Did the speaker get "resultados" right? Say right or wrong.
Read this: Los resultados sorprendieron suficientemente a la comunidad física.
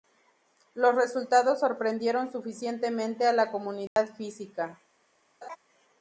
right